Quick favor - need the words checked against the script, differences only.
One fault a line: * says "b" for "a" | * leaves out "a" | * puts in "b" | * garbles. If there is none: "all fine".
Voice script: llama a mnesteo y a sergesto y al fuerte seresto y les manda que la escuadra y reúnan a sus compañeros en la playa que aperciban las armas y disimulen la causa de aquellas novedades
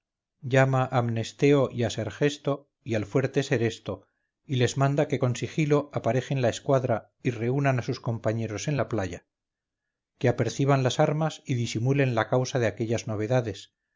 * puts in "con sigilo aparejen"